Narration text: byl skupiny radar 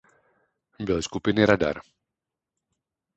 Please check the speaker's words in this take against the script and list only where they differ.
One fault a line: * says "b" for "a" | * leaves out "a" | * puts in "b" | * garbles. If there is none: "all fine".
all fine